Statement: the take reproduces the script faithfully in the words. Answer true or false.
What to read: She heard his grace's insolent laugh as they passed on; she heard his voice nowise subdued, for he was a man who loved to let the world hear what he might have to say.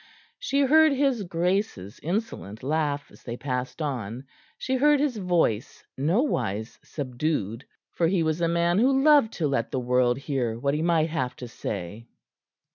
true